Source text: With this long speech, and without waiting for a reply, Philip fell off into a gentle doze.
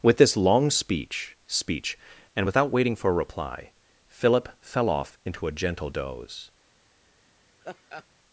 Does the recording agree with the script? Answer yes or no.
no